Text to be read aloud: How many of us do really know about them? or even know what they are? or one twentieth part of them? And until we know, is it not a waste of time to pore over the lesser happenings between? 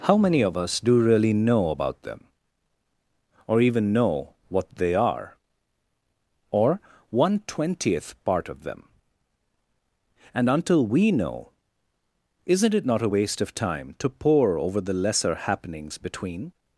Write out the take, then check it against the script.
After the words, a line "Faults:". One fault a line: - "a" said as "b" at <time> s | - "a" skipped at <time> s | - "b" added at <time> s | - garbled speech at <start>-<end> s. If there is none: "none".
How many of us do really know about them? or even know what they are? or one twentieth part of them? And until we know, isn't it not a waste of time to pore over the lesser happenings between?
Faults:
- "is" said as "isn't" at 12.4 s